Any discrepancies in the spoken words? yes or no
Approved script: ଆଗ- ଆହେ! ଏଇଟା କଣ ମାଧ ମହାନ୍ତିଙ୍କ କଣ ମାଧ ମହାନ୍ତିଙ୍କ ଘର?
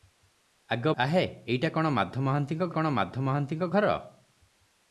no